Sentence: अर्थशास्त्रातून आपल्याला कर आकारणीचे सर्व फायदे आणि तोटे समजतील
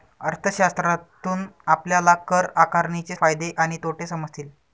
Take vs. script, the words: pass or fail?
fail